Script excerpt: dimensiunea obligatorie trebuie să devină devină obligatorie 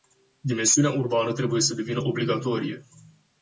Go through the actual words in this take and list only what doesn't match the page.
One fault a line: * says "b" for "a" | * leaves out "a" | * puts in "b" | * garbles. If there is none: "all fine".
* says "urbană" for "obligatorie"
* leaves out "devină"